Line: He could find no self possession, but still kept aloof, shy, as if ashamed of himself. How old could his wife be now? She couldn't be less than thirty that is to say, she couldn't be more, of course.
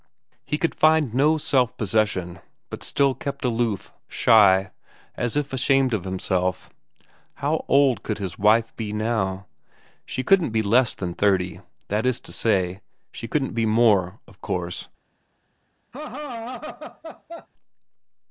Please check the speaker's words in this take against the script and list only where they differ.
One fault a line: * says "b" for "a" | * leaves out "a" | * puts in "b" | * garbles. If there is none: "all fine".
all fine